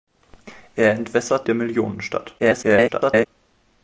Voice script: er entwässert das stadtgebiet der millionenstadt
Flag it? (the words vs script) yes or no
yes